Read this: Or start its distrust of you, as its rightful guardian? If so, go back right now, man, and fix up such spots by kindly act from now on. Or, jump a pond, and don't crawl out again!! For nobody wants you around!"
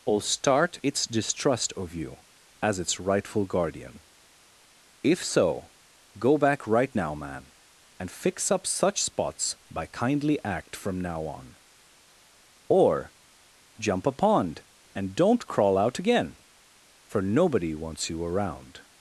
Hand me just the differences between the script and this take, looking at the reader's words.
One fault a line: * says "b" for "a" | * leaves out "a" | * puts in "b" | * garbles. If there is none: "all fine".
all fine